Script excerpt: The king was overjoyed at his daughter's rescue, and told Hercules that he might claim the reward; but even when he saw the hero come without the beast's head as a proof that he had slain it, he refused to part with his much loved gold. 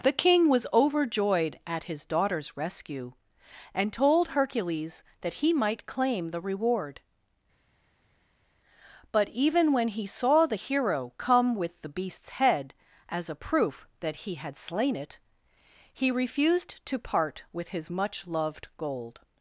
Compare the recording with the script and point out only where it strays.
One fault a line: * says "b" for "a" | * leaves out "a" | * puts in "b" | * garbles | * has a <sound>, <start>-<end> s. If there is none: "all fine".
* says "with" for "without"